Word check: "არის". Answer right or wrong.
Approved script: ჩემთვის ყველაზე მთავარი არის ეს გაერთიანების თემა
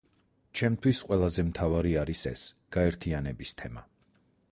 right